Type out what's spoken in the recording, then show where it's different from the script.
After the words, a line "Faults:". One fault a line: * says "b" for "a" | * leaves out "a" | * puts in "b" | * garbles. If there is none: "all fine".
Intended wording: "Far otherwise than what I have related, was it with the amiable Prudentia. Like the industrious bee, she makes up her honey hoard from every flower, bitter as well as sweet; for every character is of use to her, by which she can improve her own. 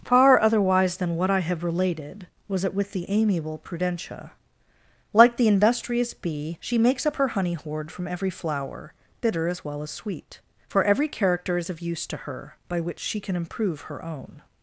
"Far otherwise than what I have related, was it with the amiable Prudentia. Like the industrious bee, she makes up her honey hoard from every flower, bitter as well as sweet; for every character is of use to her, by which she can improve her own.
Faults:
all fine